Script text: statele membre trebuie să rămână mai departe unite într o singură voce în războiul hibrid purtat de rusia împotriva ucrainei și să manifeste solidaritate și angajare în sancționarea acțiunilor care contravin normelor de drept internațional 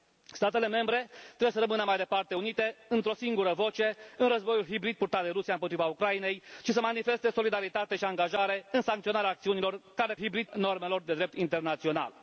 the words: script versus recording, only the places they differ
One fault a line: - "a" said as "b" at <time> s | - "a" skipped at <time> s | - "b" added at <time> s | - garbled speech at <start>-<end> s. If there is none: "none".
- "contravin" said as "hibrid" at 10.2 s